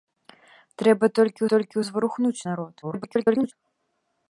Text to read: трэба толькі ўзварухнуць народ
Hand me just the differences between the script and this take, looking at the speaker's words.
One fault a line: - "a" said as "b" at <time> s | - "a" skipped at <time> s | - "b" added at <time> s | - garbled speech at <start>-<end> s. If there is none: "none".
- "толькі" added at 1.5 s
- garbled speech at 2.8-3.5 s